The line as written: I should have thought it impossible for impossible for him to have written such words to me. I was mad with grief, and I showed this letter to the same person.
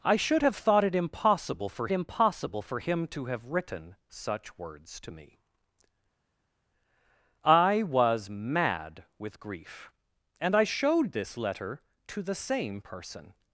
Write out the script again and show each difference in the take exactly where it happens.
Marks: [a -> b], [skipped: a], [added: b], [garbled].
I should have thought it impossible for impossible for him to have written such words to me. I was mad with grief, and I showed this letter to the same person.